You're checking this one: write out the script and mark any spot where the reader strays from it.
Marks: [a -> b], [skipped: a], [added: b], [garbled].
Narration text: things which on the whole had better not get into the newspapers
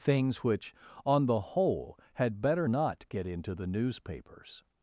things which on the whole had better not get into the newspapers